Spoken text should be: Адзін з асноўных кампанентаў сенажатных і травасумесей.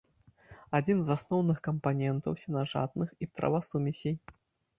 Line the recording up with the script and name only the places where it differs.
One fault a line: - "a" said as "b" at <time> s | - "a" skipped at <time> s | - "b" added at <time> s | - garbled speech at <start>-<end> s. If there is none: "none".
none